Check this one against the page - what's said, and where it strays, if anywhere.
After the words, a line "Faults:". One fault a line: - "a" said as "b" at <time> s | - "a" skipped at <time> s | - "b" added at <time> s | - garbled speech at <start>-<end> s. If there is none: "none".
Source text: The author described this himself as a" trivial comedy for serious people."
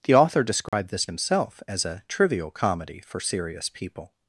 The author described this himself as a" trivial comedy for serious people."
Faults:
none